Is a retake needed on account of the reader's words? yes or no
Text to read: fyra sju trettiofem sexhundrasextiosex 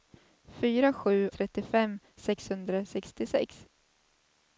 no